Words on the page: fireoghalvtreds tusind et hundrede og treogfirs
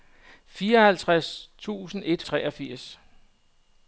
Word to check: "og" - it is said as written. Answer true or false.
false